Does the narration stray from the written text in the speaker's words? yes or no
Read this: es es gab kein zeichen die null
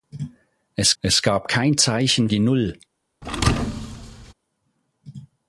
no